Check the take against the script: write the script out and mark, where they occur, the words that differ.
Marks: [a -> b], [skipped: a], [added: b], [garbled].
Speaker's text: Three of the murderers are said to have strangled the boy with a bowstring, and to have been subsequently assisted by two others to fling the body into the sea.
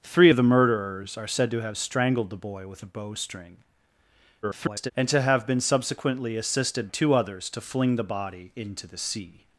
Three of the murderers are said to have strangled the boy with a bowstring, [garbled] and to have been subsequently assisted [skipped: by] two others to fling the body into the sea.